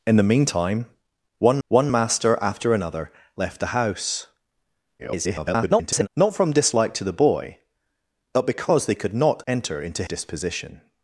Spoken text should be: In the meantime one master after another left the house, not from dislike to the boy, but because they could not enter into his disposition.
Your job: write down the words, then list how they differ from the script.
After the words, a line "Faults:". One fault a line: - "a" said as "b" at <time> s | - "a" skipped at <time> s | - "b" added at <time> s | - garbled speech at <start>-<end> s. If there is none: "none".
In the meantime one one master after another left the house, [garbled] not from dislike to the boy, but because they could not enter into disposition.
Faults:
- "one" added at 1.7 s
- garbled speech at 5.0-6.1 s
- "his" skipped at 10.0 s